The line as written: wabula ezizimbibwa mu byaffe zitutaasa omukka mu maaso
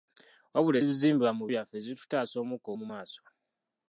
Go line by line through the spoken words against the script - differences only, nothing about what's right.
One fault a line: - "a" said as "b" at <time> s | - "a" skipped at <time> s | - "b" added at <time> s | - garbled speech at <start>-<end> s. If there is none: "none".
none